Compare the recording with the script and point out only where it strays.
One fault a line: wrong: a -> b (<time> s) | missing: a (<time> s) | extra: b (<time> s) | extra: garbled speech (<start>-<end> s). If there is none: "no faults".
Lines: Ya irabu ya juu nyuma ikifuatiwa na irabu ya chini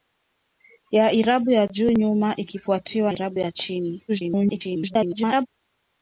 missing: na (3.1 s)
extra: garbled speech (4.1-5.5 s)